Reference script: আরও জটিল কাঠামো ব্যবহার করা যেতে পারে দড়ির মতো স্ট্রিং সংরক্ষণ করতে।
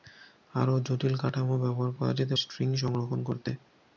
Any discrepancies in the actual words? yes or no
yes